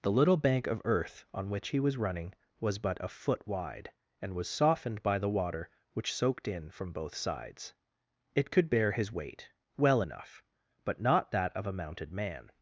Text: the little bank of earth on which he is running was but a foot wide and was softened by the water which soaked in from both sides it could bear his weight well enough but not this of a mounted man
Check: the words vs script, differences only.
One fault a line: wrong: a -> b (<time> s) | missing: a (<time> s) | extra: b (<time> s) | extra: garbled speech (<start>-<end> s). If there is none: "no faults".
wrong: is -> was (1.8 s)
wrong: this -> that (11.3 s)